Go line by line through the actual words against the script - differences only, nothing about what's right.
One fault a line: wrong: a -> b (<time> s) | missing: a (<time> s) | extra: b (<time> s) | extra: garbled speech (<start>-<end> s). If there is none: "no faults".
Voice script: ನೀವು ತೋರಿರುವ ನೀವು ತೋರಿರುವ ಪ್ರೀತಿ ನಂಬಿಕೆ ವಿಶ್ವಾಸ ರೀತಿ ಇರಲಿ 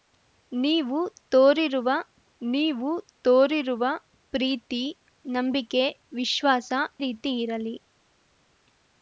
no faults